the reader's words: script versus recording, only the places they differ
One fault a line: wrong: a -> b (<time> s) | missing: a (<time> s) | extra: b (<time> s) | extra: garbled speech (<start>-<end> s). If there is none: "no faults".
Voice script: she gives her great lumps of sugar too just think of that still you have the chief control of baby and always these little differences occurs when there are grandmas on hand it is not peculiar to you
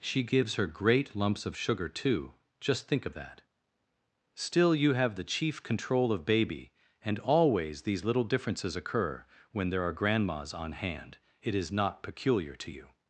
wrong: occurs -> occur (8.8 s)